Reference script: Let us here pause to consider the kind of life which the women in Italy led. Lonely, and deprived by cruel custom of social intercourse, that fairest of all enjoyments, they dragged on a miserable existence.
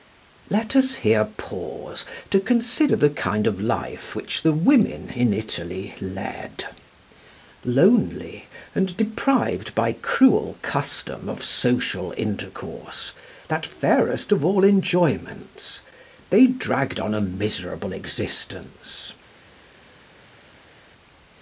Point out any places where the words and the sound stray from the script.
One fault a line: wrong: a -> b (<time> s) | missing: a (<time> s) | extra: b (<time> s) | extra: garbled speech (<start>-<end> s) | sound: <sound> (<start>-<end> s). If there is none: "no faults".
no faults